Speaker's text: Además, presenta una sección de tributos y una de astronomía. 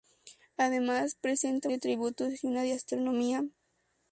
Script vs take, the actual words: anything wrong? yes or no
yes